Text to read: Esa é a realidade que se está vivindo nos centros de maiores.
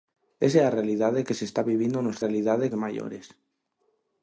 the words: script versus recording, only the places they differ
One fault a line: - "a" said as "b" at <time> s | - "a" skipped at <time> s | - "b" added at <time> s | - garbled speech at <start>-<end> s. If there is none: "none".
- "centros" said as "realidade" at 2.2 s